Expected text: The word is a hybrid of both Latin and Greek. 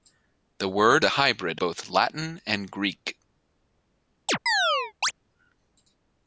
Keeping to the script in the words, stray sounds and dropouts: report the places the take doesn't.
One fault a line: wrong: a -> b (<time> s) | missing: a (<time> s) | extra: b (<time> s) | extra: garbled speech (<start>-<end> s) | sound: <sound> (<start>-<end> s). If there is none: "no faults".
missing: is (1.1 s)
missing: of (1.6 s)
sound: chirp (4.3-5.1 s)